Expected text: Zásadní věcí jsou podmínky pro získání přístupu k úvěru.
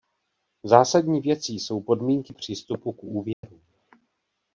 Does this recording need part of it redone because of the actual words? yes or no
yes